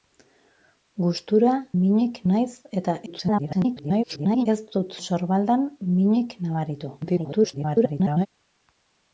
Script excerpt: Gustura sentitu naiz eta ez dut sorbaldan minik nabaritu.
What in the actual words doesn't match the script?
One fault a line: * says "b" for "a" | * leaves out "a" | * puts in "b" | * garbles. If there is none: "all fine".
* says "minik" for "sentitu"
* garbles
* garbles